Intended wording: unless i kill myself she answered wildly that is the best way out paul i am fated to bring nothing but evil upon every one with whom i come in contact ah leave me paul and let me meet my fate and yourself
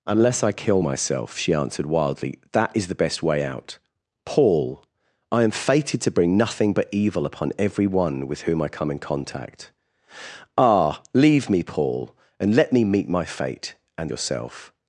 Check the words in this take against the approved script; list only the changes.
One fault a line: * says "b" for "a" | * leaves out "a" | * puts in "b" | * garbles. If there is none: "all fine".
all fine